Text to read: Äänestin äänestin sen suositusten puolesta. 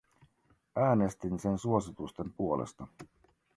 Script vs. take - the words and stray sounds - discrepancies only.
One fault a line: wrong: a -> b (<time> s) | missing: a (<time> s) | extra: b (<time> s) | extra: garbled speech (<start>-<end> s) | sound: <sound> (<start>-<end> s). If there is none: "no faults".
missing: äänestin (1.4 s)